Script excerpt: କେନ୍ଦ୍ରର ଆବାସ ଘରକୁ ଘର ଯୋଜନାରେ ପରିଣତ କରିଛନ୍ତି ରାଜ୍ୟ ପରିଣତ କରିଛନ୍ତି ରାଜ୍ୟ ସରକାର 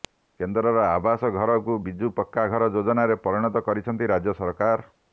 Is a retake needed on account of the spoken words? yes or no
yes